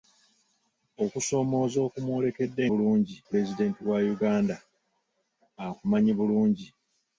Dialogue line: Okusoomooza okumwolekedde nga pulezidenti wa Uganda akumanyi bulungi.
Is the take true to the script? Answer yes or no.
no